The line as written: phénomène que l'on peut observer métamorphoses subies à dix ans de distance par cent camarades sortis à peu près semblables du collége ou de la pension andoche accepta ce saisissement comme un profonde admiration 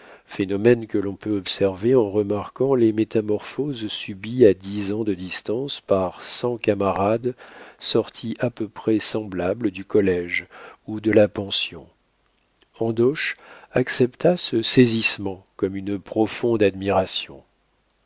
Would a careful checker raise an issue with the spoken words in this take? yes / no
yes